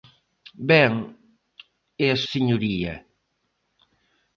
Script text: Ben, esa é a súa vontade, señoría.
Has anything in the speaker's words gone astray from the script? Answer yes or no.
yes